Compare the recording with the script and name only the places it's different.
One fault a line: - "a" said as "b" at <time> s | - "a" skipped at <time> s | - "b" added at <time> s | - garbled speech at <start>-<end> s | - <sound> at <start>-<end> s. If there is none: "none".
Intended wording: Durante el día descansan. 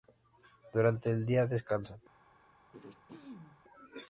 - throat clearing at 2.7-3.6 s